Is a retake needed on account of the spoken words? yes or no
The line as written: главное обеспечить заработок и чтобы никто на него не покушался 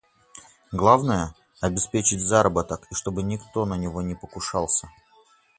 no